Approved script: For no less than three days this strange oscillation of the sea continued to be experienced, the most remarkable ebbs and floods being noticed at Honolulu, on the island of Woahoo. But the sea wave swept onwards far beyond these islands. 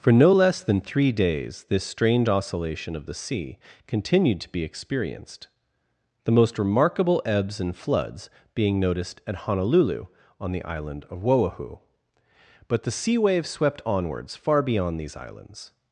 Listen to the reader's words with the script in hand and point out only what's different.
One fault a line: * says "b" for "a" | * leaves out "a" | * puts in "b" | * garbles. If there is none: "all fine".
all fine